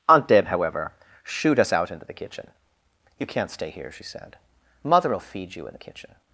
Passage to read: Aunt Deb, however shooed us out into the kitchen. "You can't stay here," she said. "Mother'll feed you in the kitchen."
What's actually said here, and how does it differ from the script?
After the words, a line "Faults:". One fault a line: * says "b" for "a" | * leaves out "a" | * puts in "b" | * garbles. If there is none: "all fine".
Aunt Deb, however shooed us out into the kitchen. "You can't stay here," she said. "Mother'll feed you in the kitchen."
Faults:
all fine